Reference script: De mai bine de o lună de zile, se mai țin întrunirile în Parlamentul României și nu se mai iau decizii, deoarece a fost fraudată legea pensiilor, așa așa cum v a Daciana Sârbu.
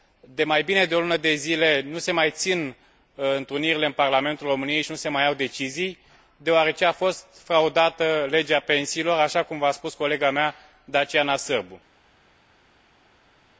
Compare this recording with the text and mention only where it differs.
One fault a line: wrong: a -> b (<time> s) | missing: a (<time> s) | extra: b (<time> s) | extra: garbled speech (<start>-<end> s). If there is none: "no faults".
extra: nu (1.8 s)
missing: așa (9.4 s)
extra: spus colega mea (9.7 s)